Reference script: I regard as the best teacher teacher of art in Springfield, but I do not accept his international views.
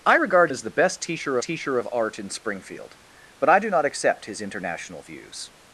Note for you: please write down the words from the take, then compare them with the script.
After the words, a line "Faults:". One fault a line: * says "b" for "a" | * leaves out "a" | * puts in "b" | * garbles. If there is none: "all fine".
I regard as the best teacher teacher of art in Springfield, but I do not accept his international views.
Faults:
all fine